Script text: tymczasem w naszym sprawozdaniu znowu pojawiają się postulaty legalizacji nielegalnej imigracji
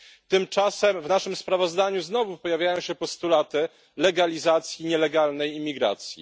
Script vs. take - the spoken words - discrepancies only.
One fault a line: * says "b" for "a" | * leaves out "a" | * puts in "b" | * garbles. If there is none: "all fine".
all fine